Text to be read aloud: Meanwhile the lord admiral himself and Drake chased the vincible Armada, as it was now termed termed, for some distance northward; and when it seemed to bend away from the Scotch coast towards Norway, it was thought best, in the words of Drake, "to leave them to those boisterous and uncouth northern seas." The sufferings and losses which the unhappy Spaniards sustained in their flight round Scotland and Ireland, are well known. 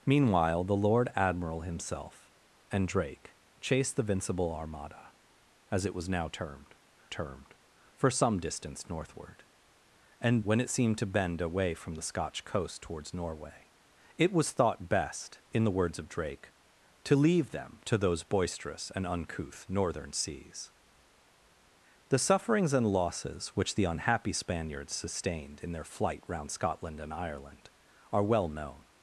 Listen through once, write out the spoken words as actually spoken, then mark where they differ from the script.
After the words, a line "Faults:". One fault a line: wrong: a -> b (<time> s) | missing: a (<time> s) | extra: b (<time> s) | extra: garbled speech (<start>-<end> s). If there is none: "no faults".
Meanwhile the lord admiral himself and Drake chased the vincible Armada, as it was now termed termed, for some distance northward; and when it seemed to bend away from the Scotch coast towards Norway, it was thought best, in the words of Drake, "to leave them to those boisterous and uncouth northern seas." The sufferings and losses which the unhappy Spaniards sustained in their flight round Scotland and Ireland, are well known.
Faults:
no faults